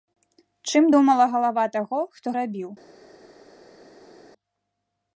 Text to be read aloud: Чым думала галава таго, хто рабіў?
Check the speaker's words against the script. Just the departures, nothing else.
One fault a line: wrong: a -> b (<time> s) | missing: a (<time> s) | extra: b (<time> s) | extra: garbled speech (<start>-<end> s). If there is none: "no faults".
no faults